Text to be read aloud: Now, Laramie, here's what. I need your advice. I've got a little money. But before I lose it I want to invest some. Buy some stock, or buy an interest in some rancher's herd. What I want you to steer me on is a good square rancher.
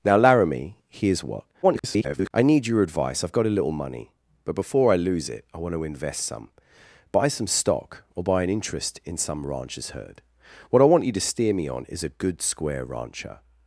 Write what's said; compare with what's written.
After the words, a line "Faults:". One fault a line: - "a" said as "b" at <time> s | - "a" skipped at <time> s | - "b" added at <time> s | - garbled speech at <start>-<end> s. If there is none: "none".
Now, Laramie, here's what. [garbled] I need your advice. I've got a little money. But before I lose it I want to invest some. Buy some stock, or buy an interest in some rancher's herd. What I want you to steer me on is a good square rancher.
Faults:
- garbled speech at 1.6-2.3 s